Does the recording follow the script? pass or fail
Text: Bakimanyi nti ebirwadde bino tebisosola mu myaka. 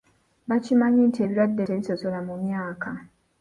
fail